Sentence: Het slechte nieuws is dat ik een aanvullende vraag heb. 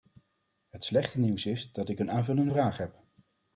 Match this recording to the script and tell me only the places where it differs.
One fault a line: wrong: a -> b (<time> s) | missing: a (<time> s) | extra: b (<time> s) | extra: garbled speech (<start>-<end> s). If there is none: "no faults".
no faults